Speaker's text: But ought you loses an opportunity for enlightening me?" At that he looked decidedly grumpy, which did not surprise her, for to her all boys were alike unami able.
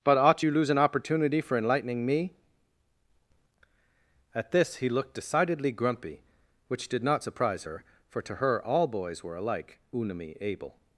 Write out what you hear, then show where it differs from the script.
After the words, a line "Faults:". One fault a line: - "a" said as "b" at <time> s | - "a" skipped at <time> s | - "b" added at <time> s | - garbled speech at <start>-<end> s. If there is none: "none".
But ought you lose an opportunity for enlightening me?" At this he looked decidedly grumpy, which did not surprise her, for to her all boys were alike unami able.
Faults:
- "loses" said as "lose" at 0.5 s
- "that" said as "this" at 4.5 s